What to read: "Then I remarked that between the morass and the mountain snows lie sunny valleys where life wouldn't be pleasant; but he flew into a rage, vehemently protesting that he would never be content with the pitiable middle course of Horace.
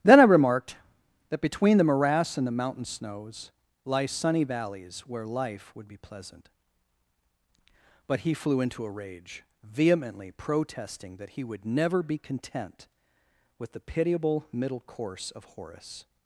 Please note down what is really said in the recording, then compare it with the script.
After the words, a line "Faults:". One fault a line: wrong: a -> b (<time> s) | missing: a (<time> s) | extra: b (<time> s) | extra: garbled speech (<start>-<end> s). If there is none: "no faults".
"Then I remarked that between the morass and the mountain snows lie sunny valleys where life would be pleasant; but he flew into a rage, vehemently protesting that he would never be content with the pitiable middle course of Horace.
Faults:
wrong: wouldn't -> would (5.8 s)